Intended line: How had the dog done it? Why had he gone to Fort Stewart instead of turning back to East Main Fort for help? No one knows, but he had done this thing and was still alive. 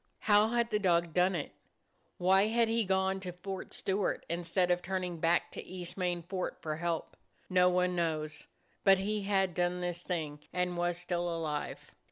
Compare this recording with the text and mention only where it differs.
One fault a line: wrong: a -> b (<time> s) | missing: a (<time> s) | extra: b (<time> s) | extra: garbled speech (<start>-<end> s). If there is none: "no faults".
no faults